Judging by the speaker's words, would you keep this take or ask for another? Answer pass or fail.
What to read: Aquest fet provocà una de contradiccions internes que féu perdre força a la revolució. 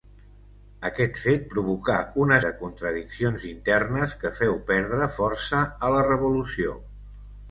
pass